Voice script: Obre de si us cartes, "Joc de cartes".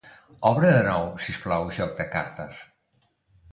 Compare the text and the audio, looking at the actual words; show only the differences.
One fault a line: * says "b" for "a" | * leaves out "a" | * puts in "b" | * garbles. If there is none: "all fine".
* puts in "nou"
* says "plau" for "cartes"